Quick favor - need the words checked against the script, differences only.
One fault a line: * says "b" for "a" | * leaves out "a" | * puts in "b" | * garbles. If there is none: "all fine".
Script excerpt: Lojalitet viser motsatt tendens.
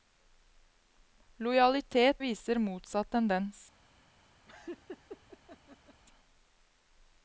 all fine